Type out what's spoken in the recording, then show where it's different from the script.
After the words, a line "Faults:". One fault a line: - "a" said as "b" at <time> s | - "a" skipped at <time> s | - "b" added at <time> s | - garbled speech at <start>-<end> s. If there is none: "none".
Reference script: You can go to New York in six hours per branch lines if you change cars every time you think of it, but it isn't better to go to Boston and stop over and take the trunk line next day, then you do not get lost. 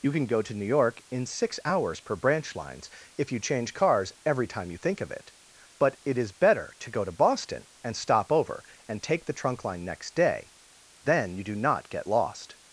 You can go to New York in six hours per branch lines if you change cars every time you think of it, but it is better to go to Boston and stop over and take the trunk line next day, then you do not get lost.
Faults:
- "isn't" said as "is" at 6.2 s